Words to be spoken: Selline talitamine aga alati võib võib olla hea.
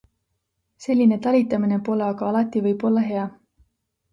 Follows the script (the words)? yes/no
no